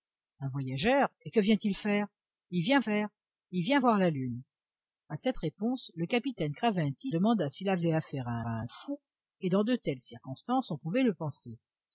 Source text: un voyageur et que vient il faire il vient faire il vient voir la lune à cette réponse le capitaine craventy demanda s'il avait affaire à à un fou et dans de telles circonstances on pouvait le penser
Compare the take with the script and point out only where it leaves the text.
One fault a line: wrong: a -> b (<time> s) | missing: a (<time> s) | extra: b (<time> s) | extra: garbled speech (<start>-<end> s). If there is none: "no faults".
no faults